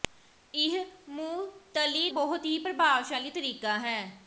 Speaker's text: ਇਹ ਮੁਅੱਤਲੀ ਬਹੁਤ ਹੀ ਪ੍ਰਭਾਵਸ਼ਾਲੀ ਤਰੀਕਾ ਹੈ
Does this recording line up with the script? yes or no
yes